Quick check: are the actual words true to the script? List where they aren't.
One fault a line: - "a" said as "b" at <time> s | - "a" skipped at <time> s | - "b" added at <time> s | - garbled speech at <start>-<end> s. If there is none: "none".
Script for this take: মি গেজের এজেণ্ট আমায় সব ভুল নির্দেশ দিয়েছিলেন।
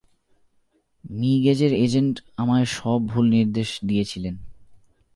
none